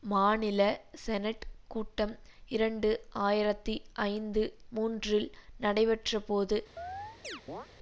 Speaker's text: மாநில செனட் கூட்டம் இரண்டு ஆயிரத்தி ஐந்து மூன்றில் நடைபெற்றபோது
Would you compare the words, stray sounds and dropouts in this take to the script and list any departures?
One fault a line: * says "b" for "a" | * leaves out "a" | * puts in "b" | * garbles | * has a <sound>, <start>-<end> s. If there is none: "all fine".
* has a chirp, 6.8-7.7 s